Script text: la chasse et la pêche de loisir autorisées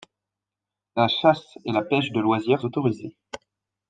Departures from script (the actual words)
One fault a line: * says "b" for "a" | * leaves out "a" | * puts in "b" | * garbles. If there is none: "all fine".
all fine